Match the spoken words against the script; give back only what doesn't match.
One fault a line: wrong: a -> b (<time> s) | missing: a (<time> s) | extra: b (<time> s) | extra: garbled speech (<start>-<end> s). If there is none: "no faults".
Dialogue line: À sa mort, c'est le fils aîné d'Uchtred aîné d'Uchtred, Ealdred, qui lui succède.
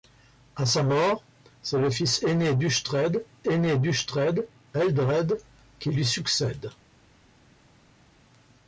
no faults